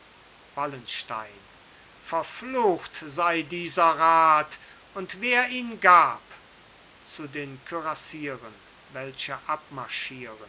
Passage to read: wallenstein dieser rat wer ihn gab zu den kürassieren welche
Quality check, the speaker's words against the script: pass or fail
fail